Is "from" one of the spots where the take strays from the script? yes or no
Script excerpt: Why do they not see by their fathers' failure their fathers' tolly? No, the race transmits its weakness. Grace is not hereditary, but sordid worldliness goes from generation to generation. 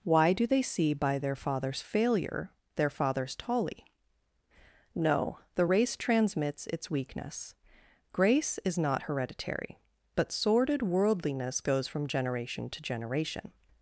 no